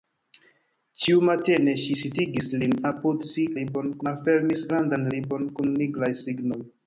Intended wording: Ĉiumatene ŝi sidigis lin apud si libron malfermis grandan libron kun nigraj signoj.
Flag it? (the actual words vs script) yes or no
no